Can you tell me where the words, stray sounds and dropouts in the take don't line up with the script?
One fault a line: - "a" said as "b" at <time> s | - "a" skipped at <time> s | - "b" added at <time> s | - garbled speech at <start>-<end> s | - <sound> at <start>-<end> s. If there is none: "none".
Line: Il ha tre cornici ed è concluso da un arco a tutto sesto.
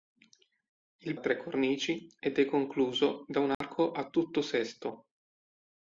- dropout at 3.5-3.6 s